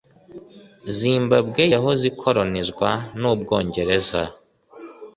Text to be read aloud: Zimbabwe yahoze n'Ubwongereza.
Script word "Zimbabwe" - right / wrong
right